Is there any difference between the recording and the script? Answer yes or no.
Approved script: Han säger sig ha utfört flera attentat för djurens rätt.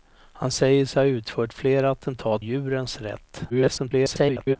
yes